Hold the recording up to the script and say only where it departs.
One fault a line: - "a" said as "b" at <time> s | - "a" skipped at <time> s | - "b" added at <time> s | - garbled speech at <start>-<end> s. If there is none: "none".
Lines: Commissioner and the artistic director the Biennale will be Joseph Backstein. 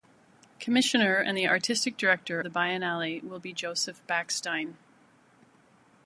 none